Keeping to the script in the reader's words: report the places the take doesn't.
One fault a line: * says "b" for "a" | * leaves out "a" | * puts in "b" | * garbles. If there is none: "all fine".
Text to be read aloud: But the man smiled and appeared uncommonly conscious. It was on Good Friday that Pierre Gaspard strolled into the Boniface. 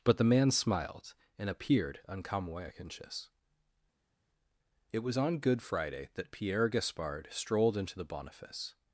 all fine